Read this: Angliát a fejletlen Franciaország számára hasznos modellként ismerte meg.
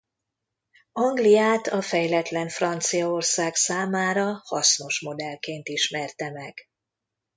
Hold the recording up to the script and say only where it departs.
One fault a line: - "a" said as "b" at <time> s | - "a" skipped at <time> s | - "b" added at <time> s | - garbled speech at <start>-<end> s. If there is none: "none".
none